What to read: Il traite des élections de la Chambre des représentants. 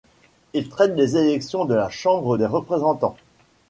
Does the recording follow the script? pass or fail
pass